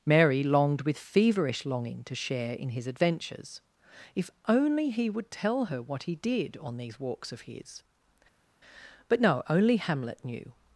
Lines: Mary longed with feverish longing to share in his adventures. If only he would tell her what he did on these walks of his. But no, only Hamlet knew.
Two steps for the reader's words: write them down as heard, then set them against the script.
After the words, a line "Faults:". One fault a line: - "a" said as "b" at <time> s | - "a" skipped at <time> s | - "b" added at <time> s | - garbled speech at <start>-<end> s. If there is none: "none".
Mary longed with feverish longing to share in his adventures. If only he would tell her what he did on these walks of his. But no, only Hamlet knew.
Faults:
none